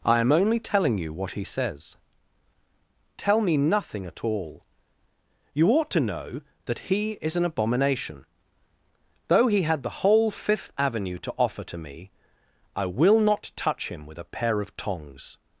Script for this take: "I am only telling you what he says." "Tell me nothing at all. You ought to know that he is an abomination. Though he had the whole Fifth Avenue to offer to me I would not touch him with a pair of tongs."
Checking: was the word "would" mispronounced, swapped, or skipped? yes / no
yes